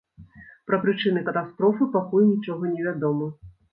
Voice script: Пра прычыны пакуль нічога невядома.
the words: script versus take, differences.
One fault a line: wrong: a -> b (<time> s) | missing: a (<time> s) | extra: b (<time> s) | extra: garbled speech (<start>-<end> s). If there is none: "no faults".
extra: катастрофы (1.3 s)